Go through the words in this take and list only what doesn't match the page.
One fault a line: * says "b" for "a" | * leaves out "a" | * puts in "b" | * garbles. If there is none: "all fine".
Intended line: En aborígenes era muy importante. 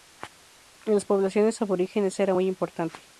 * puts in "las poblaciones"